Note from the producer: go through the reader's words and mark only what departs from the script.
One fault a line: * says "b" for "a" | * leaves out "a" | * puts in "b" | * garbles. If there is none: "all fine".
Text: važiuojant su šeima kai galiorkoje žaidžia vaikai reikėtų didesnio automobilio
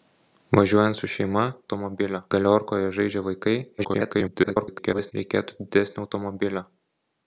* says "automobilio" for "kai"
* garbles